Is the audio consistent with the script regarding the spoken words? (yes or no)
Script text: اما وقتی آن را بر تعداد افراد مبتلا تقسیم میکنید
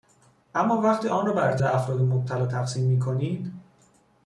no